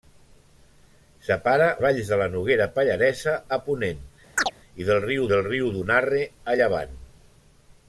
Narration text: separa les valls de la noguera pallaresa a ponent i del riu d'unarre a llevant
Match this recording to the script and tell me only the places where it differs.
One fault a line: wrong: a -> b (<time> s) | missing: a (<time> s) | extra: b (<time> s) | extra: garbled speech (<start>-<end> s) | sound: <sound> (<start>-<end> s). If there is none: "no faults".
missing: les (1.7 s)
sound: chirp (4.4-4.5 s)
extra: del riu (5.3 s)